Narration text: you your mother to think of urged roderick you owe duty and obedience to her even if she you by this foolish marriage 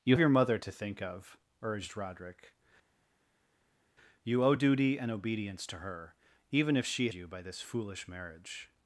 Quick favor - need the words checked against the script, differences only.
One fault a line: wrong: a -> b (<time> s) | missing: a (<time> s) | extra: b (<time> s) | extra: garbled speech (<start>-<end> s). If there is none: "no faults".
no faults